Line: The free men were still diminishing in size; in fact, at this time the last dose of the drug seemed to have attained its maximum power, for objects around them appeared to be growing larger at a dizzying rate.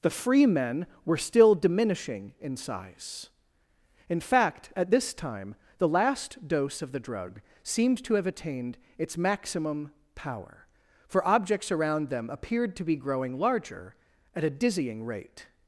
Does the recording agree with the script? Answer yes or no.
yes